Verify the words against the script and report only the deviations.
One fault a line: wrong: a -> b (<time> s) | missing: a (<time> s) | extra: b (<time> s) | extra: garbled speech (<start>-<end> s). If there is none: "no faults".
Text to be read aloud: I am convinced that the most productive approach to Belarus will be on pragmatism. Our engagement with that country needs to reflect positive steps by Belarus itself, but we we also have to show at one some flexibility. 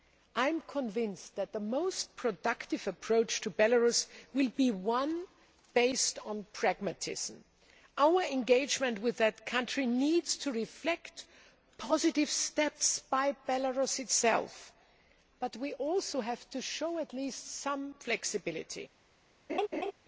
extra: one based (4.7 s)
missing: we (15.7 s)
wrong: one -> least (17.1 s)